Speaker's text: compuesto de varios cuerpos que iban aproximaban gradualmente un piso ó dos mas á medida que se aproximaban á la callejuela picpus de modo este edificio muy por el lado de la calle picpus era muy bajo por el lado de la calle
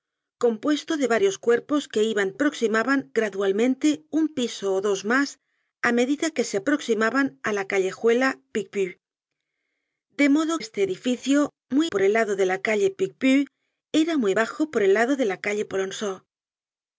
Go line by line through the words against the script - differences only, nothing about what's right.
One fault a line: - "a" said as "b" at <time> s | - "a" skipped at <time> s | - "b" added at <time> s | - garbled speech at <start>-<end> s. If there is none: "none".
none